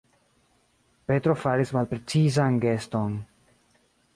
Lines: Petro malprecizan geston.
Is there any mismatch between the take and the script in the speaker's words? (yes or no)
yes